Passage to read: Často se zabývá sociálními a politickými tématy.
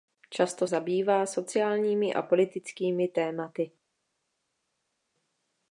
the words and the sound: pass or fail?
fail